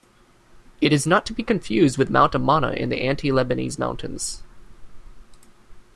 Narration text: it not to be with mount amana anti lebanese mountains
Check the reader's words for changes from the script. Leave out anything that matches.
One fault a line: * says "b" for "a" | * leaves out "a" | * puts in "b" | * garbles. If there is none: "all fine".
* puts in "is"
* puts in "confused"
* puts in "in the"